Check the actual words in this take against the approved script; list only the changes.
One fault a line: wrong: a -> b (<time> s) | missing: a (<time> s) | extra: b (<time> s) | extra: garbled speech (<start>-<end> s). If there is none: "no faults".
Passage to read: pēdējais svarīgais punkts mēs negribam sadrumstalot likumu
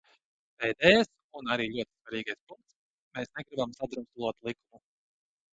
extra: un arī ļoti (1.4 s)